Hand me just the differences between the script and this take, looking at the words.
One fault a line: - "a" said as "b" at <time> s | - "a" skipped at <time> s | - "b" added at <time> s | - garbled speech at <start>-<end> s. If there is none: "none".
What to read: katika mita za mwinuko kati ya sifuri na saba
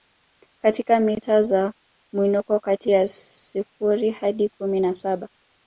- "hadi kumi" added at 4.1 s